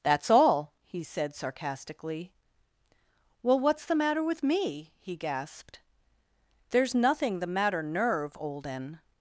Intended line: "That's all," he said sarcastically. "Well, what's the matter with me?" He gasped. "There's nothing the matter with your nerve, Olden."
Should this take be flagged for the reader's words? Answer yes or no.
yes